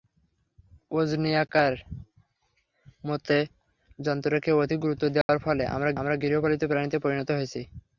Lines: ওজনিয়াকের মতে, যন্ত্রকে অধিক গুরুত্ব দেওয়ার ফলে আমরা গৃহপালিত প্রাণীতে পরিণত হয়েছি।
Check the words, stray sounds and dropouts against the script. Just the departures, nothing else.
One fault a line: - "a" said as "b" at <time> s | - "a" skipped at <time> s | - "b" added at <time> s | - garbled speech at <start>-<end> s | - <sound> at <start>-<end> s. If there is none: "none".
- dropout at 5.2-5.3 s
- "আমরা" added at 6.0 s